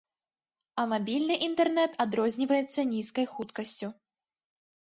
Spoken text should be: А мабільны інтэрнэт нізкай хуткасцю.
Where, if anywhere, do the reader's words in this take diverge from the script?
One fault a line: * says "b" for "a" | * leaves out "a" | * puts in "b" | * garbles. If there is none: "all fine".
* puts in "адрозніваецца"